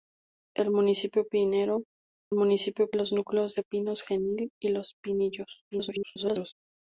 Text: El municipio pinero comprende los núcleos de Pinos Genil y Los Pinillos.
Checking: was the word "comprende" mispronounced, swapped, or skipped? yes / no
yes